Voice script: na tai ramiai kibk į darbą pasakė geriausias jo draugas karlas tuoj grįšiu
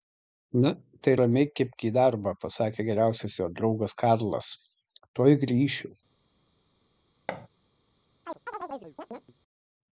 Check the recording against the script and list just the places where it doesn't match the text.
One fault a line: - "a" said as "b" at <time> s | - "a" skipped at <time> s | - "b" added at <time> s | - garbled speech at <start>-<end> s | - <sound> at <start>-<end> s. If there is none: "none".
- thud at 7.3-7.5 s
- chirp at 8.3-9.3 s